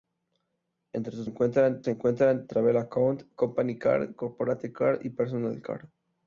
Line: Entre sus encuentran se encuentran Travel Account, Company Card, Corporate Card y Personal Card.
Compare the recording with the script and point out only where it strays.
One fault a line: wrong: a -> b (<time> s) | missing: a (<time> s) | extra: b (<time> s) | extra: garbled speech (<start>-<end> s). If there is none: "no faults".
no faults